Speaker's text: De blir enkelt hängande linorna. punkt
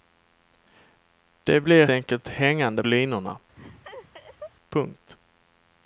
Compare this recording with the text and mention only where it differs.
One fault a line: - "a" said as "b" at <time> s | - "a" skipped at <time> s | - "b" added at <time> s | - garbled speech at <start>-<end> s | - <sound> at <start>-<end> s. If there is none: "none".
- laugh at 3.6-4.5 s